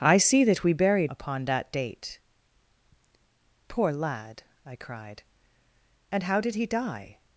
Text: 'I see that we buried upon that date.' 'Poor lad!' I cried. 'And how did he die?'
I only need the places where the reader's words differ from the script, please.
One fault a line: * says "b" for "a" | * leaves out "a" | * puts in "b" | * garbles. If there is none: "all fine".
all fine